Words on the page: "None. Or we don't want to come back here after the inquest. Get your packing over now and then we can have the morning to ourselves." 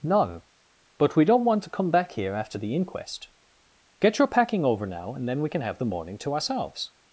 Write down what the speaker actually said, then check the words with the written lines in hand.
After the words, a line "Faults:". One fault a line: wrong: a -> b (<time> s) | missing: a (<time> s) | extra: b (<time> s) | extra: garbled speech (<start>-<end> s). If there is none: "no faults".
"None. But we don't want to come back here after the inquest. Get your packing over now and then we can have the morning to ourselves."
Faults:
wrong: Or -> But (1.0 s)